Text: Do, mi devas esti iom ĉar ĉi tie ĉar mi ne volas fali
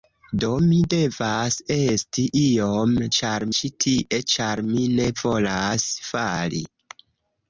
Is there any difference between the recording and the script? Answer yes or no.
no